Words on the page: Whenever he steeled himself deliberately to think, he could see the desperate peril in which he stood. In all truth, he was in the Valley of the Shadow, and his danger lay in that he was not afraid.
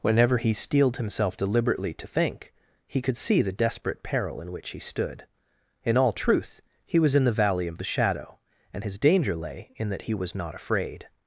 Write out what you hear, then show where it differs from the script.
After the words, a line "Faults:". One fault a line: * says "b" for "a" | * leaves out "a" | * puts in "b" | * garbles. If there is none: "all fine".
Whenever he steeled himself deliberately to think, he could see the desperate peril in which he stood. In all truth, he was in the Valley of the Shadow, and his danger lay in that he was not afraid.
Faults:
all fine